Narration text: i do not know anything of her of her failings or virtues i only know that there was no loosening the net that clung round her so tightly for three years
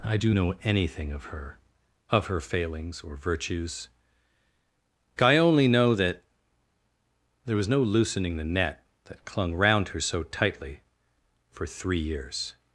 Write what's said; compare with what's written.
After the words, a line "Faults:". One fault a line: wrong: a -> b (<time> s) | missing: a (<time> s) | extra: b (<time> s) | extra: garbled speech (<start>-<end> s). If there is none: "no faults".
i do know anything of her of her failings or virtues i only know that there was no loosening the net that clung round her so tightly for three years
Faults:
missing: not (0.3 s)